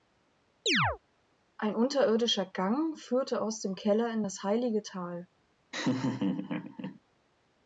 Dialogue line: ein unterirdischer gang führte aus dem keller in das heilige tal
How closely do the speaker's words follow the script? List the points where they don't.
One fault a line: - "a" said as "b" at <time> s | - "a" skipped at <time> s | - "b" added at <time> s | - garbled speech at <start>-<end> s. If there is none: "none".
none